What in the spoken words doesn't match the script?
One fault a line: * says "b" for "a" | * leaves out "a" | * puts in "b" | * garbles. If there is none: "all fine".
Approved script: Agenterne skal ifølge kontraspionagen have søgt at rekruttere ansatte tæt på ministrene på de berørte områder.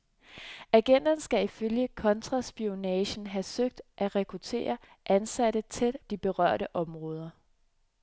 * leaves out "på ministrene på"